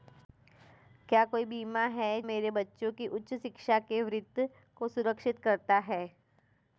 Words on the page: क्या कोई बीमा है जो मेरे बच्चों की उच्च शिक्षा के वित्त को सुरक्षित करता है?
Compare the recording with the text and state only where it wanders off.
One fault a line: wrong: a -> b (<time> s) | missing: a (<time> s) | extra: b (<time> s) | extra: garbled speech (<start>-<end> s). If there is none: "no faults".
missing: जो (2.2 s)